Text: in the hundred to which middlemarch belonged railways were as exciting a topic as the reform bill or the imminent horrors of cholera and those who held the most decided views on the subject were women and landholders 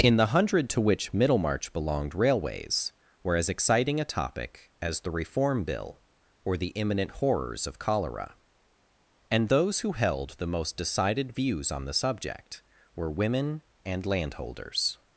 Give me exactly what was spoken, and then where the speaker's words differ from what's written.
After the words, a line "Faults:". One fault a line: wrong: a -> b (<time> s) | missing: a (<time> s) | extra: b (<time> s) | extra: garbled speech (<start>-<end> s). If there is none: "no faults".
in the hundred to which middlemarch belonged railways were as exciting a topic as the reform bill or the imminent horrors of cholera and those who held the most decided views on the subject were women and landholders
Faults:
no faults